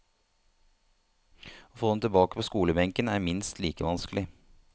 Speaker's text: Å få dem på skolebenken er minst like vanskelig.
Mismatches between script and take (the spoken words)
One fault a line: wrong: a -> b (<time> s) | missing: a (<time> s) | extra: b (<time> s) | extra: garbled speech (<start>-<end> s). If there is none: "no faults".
extra: tilbake (2.0 s)